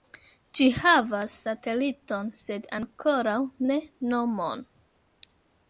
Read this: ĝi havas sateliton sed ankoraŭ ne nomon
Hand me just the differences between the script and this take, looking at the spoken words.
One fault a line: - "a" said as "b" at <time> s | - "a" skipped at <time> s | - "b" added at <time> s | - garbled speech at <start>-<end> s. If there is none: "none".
none